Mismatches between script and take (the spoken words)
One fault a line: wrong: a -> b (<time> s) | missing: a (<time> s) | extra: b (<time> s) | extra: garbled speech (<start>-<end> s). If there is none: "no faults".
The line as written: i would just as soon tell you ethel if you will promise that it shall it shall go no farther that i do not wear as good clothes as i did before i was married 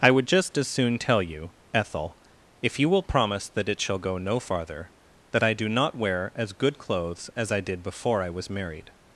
missing: it shall (4.0 s)